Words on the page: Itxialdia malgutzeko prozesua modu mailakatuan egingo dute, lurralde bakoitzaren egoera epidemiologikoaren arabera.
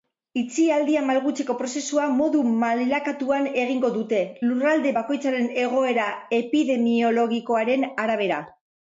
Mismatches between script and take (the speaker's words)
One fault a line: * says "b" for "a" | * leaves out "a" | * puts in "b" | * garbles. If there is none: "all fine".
all fine